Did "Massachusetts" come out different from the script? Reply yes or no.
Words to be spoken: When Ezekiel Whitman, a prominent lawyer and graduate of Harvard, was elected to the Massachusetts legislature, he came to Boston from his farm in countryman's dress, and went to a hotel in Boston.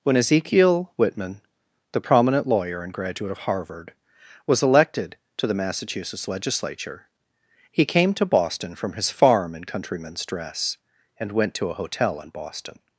no